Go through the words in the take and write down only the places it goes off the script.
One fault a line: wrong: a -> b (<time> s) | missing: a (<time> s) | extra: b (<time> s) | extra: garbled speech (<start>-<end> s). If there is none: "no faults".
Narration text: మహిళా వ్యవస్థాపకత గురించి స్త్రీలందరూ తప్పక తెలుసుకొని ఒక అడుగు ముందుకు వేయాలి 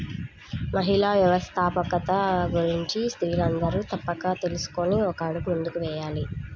no faults